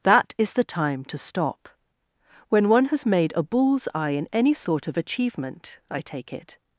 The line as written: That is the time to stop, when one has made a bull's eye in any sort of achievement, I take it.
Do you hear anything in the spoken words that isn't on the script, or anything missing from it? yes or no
no